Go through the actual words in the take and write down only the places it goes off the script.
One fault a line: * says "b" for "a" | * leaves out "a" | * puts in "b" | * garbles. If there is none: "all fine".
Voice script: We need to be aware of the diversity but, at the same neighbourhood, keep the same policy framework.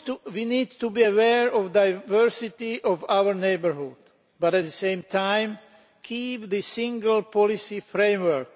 * puts in "of our neighbourhood"
* says "time" for "neighbourhood"
* says "single" for "same"